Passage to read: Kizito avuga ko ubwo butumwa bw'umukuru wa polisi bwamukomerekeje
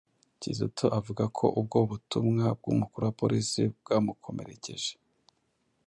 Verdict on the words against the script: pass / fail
pass